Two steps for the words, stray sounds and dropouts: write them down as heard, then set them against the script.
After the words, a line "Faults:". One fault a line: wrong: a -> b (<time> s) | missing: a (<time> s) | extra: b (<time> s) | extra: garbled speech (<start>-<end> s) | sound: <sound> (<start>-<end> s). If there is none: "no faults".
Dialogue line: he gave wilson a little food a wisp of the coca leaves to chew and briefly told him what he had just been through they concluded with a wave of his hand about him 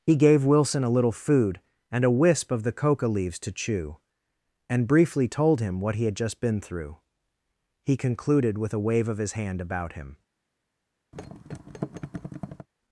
he gave wilson a little food and a wisp of the coca leaves to chew and briefly told him what he had just been through he concluded with a wave of his hand about him
Faults:
extra: and (1.9 s)
wrong: they -> he (7.8 s)
sound: thud (11.1-12.7 s)